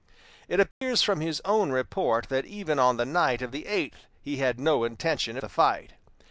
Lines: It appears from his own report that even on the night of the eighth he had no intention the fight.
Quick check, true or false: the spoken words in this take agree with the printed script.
true